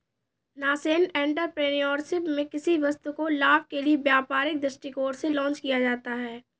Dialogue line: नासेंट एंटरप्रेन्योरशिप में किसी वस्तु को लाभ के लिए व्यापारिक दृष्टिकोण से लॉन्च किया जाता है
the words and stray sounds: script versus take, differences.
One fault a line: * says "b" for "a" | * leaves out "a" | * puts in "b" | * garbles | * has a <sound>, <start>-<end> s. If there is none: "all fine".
all fine